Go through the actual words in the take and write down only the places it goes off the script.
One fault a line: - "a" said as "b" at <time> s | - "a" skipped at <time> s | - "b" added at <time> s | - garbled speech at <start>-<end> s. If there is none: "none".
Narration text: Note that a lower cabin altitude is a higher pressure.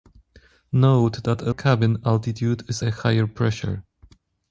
- "lower" skipped at 1.5 s